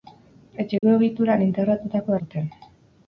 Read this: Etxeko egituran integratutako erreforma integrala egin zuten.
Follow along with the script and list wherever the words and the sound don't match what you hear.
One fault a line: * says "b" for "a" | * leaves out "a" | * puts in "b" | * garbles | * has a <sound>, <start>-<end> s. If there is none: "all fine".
* has a dropout, 0.8-0.8 s
* leaves out "erreforma integrala egin"